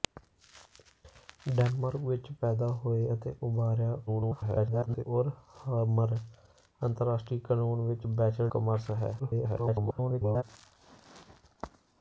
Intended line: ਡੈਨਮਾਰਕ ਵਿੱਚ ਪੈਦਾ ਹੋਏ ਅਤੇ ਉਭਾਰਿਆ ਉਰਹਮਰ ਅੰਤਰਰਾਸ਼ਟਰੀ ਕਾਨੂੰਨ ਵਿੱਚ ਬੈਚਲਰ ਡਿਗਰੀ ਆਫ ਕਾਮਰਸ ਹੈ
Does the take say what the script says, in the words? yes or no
no